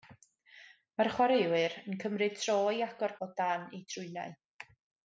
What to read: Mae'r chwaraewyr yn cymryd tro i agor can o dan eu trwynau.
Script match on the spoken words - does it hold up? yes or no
no